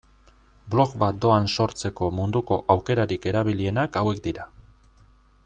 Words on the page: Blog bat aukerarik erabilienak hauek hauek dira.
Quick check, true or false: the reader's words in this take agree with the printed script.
false